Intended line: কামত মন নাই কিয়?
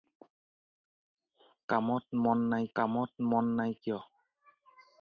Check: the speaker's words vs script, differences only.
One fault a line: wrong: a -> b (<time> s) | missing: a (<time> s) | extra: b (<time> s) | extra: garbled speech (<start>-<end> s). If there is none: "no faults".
extra: কামত মন নাই (2.8 s)